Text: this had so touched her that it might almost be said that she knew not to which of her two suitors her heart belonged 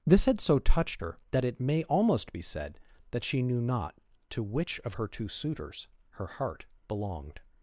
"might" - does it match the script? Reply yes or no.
no